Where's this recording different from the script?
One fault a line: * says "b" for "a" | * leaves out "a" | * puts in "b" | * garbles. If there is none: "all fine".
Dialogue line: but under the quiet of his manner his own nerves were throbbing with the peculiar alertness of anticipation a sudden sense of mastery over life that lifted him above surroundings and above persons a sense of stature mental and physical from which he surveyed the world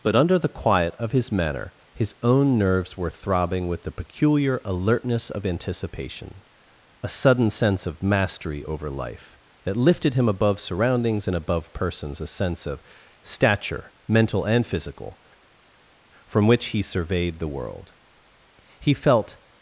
* puts in "he felt"